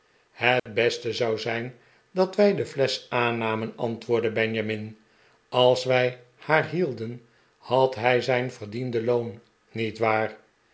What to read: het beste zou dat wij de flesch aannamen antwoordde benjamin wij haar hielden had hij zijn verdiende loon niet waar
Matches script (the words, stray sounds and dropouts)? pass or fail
fail